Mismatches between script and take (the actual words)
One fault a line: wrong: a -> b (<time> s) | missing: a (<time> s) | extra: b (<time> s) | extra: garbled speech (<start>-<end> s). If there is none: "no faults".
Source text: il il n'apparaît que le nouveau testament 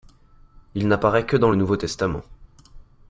missing: il (0.9 s)
extra: dans (1.4 s)